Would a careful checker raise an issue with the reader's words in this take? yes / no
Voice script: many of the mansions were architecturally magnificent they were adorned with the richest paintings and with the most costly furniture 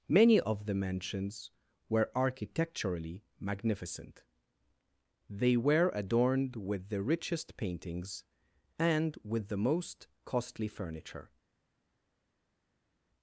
no